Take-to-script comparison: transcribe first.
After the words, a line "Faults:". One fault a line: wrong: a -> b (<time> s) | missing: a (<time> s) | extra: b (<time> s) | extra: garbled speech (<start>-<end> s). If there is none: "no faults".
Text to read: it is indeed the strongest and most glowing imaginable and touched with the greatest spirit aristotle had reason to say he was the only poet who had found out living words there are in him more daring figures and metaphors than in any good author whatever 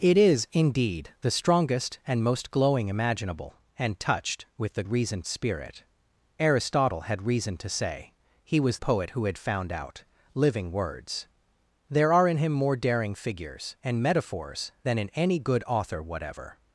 it is indeed the strongest and most glowing imaginable and touched with the reason spirit aristotle had reason to say he was poet who had found out living words there are in him more daring figures and metaphors than in any good author whatever
Faults:
wrong: greatest -> reason (4.9 s)
missing: the only (8.8 s)